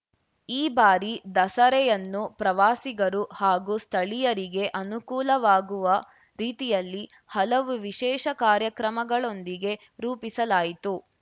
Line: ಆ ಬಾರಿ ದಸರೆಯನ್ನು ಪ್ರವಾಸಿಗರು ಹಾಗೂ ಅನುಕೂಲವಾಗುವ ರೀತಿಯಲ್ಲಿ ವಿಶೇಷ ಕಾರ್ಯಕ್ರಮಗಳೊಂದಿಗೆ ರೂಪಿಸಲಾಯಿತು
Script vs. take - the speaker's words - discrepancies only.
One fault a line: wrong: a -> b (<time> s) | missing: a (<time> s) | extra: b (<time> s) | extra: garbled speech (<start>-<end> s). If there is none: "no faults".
wrong: ಆ -> ಈ (0.5 s)
extra: ಸ್ಥಳೀಯರಿಗೆ (3.8 s)
extra: ಹಲವು (7.3 s)